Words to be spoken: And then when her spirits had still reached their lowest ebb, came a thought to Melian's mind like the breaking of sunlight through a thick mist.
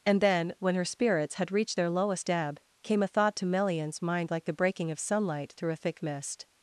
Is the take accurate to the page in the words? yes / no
no